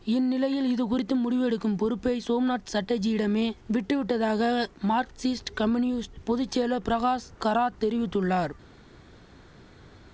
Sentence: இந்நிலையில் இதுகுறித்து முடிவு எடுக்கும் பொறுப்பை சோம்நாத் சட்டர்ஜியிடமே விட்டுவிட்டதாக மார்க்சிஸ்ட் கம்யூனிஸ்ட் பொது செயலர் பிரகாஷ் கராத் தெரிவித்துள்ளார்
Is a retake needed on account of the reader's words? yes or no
no